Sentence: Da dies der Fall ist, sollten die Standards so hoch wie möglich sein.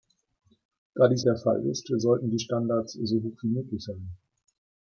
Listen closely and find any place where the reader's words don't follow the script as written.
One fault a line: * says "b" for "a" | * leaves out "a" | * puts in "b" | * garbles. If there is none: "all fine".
all fine